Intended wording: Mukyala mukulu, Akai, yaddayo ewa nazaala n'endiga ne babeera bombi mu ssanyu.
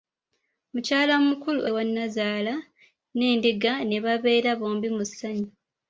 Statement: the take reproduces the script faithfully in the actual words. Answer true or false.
false